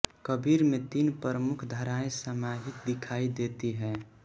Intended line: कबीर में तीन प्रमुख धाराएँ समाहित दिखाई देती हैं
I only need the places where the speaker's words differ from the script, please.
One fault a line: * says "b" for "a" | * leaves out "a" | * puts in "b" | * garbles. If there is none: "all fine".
all fine